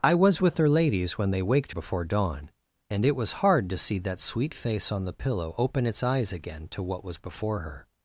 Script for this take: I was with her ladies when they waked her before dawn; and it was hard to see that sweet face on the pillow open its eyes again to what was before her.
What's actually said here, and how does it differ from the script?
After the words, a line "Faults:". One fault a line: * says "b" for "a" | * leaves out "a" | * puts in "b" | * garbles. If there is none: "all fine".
I was with her ladies when they waked before dawn; and it was hard to see that sweet face on the pillow open its eyes again to what was before her.
Faults:
* leaves out "her"